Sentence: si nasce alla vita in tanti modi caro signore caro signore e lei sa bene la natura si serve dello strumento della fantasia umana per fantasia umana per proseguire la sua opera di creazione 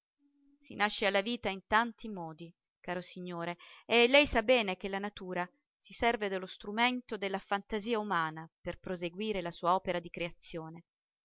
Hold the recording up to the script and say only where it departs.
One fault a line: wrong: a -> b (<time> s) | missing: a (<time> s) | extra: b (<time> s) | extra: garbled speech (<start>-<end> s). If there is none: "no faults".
missing: caro signore (3.6 s)
extra: che (4.8 s)
missing: fantasia umana per (8.8 s)